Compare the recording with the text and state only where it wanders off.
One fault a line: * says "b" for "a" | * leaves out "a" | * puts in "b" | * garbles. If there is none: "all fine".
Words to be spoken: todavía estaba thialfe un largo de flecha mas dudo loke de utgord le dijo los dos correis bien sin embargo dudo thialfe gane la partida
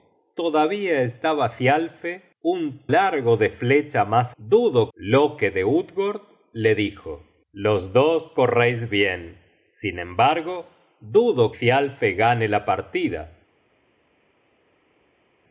all fine